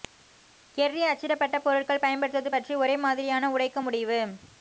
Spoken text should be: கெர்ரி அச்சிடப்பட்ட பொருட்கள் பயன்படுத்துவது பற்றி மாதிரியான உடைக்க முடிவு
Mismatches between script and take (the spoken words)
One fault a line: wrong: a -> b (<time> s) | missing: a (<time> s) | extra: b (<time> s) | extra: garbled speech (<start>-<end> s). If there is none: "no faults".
extra: ஒரே (2.7 s)